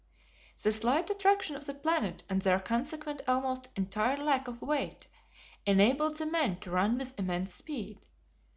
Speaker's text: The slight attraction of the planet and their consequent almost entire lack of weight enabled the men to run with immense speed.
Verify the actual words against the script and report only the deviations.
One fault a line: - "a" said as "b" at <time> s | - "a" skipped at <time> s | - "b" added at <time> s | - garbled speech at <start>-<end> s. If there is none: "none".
none